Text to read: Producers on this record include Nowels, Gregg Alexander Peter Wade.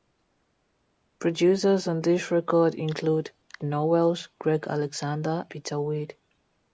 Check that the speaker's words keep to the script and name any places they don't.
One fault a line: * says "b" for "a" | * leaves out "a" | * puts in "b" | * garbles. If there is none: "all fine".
all fine